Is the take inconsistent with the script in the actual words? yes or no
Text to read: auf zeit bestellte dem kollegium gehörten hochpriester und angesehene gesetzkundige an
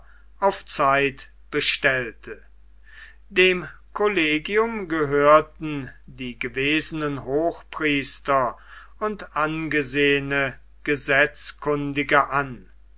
yes